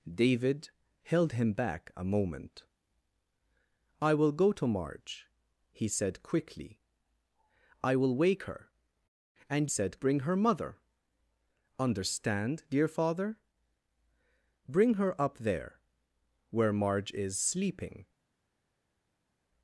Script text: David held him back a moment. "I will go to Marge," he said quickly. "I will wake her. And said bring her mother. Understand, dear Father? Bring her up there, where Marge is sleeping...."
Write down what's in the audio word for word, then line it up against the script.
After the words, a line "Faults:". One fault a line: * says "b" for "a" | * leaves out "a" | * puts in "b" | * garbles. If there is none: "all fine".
David held him back a moment. "I will go to Marge," he said quickly. "I will wake her. And said bring her mother. Understand, dear Father? Bring her up there, where Marge is sleeping...."
Faults:
all fine